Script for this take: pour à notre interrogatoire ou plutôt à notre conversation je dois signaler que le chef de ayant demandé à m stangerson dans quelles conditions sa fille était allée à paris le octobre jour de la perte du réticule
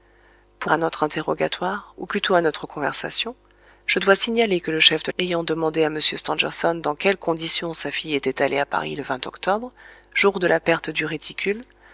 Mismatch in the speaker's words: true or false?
false